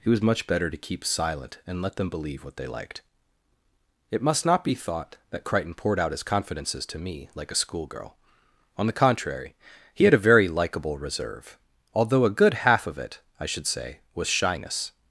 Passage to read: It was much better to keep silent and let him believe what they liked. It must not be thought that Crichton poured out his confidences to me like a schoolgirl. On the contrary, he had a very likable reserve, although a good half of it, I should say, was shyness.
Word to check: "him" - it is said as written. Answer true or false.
false